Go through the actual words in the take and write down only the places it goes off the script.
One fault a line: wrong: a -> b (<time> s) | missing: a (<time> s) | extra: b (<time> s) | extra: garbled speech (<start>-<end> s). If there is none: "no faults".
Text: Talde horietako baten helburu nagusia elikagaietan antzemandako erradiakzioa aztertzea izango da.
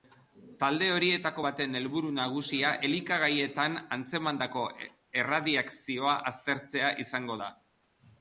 no faults